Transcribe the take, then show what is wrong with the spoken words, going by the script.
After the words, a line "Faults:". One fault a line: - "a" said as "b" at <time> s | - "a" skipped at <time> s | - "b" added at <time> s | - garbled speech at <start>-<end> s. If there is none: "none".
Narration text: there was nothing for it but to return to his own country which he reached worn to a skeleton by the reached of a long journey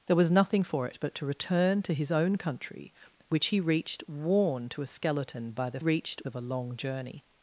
there was nothing for it but to return to his own country which he reached worn to a skeleton by the reached of a long journey
Faults:
none